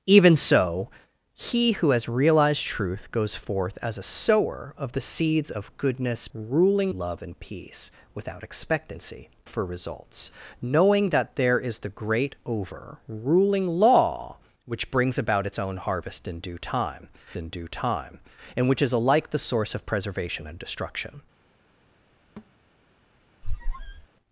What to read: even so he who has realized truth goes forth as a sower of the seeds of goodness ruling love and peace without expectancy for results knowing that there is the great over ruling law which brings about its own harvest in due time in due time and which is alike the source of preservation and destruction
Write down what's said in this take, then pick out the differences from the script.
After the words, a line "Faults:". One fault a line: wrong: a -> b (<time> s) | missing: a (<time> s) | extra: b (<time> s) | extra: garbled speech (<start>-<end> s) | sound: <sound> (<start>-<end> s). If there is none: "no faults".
even so he who has realized truth goes forth as a sower of the seeds of goodness ruling love and peace without expectancy for results knowing that there is the great over ruling law which brings about its own harvest in due time in due time and which is alike the source of preservation and destruction
Faults:
sound: thud (22.4-22.5 s)
sound: squeak (23.4-24.1 s)